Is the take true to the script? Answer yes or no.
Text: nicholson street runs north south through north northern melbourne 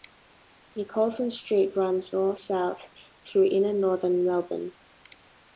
no